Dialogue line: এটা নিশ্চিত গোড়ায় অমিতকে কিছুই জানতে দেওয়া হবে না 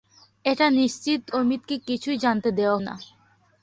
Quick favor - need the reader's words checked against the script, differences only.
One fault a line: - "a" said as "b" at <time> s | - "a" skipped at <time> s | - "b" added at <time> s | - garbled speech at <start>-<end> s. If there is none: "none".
- "গোড়ায়" skipped at 1.2 s
- "হবে" skipped at 2.8 s